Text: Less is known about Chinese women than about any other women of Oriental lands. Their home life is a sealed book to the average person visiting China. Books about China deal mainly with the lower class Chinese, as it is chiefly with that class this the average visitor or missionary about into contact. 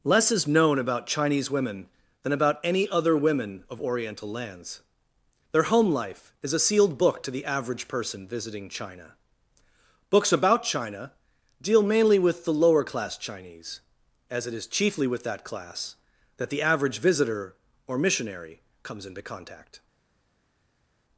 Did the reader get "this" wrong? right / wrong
wrong